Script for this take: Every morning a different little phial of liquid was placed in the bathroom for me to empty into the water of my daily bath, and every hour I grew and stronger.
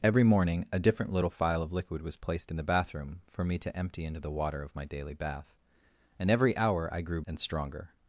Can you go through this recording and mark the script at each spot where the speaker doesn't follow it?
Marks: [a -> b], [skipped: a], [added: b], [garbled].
Every morning a different little phial of liquid was placed in the bathroom for me to empty into the water of my daily bath, and every hour I grew and stronger.